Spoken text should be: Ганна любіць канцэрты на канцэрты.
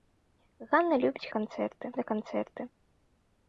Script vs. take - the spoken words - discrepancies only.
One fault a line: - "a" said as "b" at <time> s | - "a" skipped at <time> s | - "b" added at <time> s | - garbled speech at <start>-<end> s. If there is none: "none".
none